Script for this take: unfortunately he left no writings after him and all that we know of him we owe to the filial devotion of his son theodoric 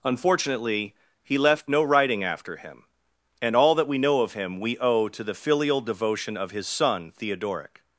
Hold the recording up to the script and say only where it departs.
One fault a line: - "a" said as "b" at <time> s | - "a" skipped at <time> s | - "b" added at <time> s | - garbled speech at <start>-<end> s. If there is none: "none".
- "writings" said as "writing" at 1.8 s